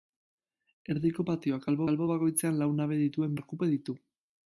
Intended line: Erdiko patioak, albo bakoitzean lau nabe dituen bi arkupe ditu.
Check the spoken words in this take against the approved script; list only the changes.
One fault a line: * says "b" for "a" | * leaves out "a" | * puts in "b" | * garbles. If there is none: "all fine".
* puts in "albo"
* leaves out "bi"